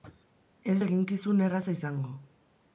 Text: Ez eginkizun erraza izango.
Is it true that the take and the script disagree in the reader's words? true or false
false